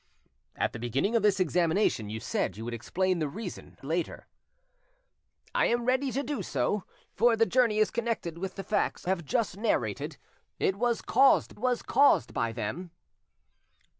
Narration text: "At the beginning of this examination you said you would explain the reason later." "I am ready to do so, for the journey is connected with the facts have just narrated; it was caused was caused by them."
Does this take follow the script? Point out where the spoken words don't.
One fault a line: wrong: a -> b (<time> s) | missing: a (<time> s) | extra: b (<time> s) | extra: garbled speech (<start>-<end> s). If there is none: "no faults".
no faults